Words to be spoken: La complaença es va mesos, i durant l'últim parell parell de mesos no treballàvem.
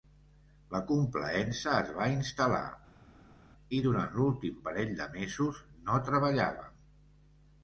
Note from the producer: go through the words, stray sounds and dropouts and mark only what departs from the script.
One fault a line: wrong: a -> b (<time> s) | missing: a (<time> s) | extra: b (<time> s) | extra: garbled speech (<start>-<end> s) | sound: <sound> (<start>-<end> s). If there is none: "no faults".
wrong: mesos -> instal·lar (2.1 s)
missing: parell (5.0 s)